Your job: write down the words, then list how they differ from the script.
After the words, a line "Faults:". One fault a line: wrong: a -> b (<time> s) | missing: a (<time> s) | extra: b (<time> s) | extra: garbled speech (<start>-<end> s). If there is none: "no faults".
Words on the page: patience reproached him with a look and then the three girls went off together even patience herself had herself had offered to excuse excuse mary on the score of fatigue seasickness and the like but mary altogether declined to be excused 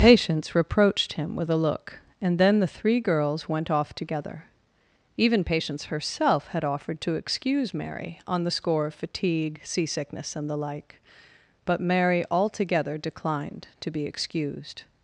patience reproached him with a look and then the three girls went off together even patience herself had offered to excuse mary on the score of fatigue seasickness and the like but mary altogether declined to be excused
Faults:
missing: herself had (6.6 s)
missing: excuse (7.7 s)